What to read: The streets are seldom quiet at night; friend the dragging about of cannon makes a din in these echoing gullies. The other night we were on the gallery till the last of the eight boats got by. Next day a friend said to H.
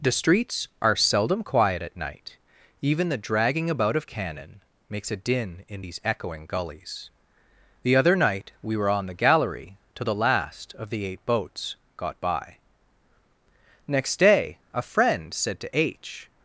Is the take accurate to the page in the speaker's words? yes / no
no